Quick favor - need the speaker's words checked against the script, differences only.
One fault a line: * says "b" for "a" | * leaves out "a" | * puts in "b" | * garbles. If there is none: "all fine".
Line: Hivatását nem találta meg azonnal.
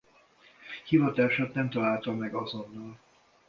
all fine